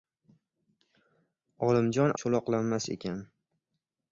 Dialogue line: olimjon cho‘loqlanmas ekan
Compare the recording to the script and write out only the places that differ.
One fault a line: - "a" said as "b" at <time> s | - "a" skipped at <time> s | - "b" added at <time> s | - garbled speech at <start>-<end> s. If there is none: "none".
none